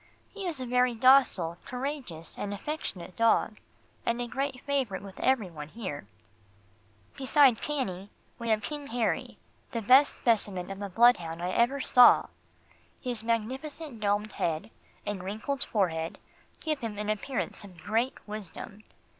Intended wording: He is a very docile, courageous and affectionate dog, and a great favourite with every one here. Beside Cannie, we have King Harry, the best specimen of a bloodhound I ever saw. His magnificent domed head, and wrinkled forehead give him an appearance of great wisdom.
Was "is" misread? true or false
false